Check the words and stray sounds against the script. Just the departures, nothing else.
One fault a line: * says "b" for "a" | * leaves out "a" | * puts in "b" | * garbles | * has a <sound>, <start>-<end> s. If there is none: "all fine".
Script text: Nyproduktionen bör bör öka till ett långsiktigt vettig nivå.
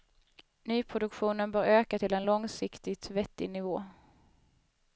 * leaves out "bör"
* says "en" for "ett"